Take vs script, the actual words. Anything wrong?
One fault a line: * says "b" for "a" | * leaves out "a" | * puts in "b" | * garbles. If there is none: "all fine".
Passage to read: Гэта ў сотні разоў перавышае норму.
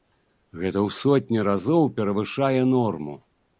all fine